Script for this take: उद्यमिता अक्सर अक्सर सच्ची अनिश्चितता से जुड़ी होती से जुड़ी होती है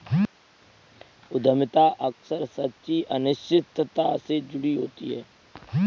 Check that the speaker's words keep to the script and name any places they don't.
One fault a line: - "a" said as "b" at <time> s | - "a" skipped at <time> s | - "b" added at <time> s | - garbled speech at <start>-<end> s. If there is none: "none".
- "अक्सर" skipped at 2.4 s
- "से जुड़ी होती" skipped at 5.1 s